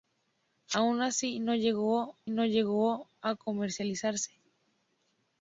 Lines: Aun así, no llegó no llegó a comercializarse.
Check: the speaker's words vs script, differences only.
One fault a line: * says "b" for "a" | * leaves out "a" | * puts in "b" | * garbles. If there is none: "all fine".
all fine